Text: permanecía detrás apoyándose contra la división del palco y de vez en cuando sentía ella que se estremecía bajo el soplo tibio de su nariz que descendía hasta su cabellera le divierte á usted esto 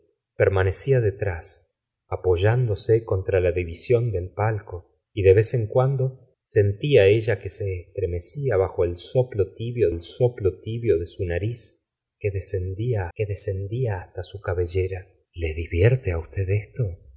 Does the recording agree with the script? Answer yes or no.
no